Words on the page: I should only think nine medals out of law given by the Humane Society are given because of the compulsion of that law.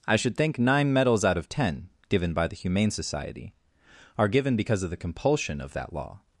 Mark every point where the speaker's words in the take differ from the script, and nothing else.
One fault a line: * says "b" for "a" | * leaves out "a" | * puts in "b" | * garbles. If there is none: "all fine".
* leaves out "only"
* says "ten" for "law"